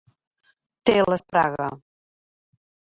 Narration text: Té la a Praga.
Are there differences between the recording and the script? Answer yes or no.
no